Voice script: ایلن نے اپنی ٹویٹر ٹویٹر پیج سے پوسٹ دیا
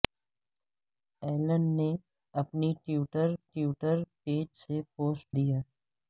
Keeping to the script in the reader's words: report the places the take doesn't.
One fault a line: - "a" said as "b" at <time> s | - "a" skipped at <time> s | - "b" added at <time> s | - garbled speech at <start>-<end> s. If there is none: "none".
none